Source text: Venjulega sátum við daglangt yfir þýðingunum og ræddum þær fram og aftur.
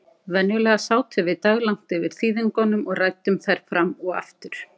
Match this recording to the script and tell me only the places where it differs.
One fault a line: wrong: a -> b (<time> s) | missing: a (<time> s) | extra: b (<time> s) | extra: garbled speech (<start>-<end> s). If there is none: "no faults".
no faults